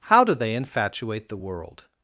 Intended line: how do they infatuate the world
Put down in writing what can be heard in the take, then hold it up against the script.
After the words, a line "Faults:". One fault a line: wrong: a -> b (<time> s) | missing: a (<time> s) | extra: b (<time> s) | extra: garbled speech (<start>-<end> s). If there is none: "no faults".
how do they infatuate the world
Faults:
no faults